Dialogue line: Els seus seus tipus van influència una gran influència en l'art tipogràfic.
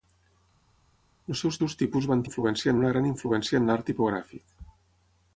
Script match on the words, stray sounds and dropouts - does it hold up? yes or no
yes